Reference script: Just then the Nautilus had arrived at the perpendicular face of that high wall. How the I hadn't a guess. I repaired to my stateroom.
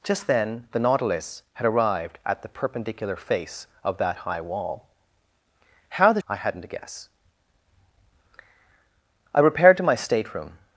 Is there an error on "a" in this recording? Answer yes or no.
no